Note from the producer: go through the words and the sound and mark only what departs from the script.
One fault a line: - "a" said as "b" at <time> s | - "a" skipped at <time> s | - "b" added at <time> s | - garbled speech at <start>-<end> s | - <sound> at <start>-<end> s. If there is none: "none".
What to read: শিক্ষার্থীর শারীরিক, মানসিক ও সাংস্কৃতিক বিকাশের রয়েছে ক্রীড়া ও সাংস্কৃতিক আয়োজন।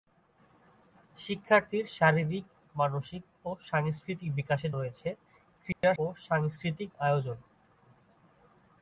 - dropout at 5.7-5.8 s